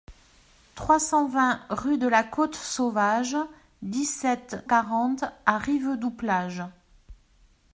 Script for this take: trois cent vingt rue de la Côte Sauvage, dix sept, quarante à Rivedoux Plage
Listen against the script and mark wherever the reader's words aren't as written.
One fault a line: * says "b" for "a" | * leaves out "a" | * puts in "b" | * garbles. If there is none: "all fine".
all fine